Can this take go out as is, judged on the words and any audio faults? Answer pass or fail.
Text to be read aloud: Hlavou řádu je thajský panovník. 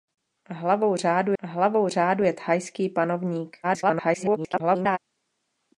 fail